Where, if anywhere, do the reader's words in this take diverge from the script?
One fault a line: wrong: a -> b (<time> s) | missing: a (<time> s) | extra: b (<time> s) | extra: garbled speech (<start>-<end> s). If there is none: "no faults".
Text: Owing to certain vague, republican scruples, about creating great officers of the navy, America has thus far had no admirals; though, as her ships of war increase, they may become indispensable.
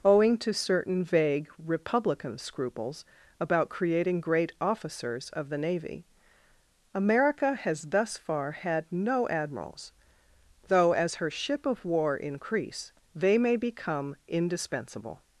wrong: ships -> ship (11.3 s)